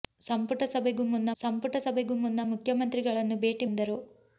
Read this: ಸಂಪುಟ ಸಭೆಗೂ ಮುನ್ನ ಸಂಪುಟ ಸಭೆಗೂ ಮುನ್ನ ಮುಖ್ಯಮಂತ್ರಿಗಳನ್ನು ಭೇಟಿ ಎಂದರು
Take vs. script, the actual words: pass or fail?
pass